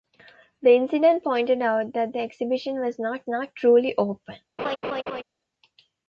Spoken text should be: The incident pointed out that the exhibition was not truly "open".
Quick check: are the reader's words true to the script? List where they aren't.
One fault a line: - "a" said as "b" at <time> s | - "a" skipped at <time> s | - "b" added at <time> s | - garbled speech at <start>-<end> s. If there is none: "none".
- "not" added at 3.3 s